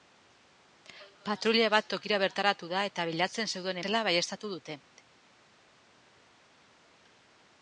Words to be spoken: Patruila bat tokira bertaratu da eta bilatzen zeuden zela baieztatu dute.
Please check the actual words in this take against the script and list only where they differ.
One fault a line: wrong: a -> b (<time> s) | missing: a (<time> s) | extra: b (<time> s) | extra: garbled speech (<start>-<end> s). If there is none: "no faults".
no faults